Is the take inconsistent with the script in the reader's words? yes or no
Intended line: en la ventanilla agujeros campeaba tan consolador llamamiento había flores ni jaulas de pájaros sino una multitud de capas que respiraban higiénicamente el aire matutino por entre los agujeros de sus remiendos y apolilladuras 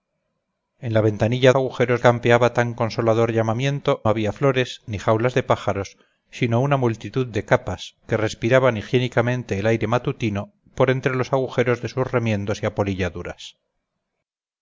no